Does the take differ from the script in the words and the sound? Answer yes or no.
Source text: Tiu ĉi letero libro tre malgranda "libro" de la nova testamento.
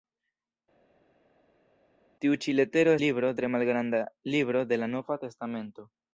no